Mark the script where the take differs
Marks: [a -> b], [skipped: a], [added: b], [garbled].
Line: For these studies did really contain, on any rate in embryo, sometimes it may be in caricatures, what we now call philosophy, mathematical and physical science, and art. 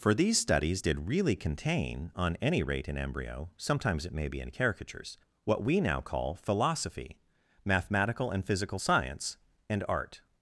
For these studies did really contain, on any rate in embryo, sometimes it may be in caricatures, what we now call philosophy, mathematical and physical science, and art.